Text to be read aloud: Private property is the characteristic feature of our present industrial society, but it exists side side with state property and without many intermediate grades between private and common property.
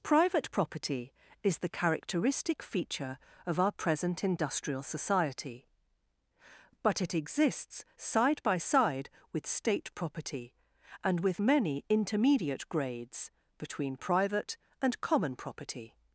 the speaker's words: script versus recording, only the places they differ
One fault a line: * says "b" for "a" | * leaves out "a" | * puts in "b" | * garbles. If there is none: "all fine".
* puts in "by"
* says "with" for "without"